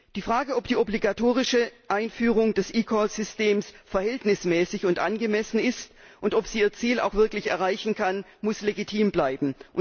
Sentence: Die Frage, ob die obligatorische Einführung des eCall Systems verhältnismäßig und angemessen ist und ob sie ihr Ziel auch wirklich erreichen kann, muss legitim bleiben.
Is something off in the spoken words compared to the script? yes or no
no